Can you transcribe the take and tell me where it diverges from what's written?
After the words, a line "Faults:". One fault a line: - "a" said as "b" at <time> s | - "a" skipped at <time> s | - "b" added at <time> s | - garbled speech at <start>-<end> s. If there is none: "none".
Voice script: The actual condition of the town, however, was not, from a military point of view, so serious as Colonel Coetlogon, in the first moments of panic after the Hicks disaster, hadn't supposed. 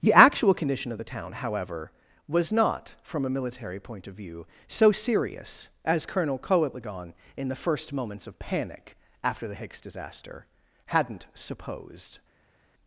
The actual condition of the town, however, was not, from a military point of view, so serious as Colonel Coetlogon, in the first moments of panic after the Hicks disaster, hadn't supposed.
Faults:
none